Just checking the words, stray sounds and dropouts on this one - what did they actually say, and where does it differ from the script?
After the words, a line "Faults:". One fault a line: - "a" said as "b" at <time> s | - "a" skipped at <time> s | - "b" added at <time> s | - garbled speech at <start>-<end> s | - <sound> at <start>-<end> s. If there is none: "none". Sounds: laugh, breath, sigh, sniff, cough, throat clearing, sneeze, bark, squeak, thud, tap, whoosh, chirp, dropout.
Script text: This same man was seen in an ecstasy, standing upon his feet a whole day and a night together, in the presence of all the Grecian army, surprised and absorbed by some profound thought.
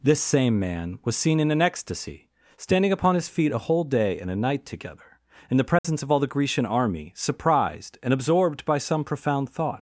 This same man was seen in an ecstasy, standing upon his feet a whole day and a night together, in the presence of all the Grecian army, surprised and absorbed by some profound thought.
Faults:
- dropout at 5.8-5.8 s